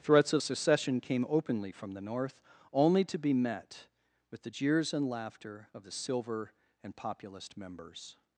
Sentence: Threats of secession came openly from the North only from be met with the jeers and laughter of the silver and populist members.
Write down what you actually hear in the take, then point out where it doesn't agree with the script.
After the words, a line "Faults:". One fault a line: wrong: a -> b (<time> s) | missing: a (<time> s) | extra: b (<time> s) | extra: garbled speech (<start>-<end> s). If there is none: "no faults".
Threats of secession came openly from the North only to be met with the jeers and laughter of the silver and populist members.
Faults:
wrong: from -> to (3.0 s)